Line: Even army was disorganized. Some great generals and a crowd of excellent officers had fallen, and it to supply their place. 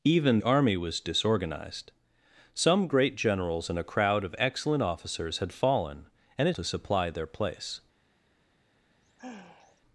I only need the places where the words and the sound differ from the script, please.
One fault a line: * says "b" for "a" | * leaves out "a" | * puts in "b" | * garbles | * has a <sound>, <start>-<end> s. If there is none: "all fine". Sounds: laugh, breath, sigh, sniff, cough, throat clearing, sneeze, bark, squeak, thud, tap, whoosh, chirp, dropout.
* has a sigh, 8.9-9.8 s